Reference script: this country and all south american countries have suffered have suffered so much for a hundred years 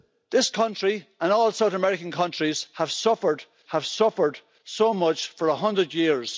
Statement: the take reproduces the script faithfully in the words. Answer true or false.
true